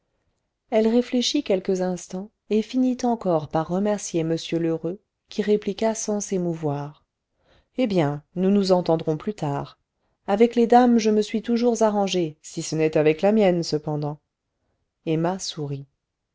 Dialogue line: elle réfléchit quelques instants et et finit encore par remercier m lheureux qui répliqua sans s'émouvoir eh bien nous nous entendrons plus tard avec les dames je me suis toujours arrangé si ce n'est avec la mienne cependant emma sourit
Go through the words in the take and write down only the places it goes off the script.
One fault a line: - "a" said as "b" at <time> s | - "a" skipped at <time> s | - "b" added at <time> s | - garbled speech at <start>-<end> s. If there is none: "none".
- "et" skipped at 2.6 s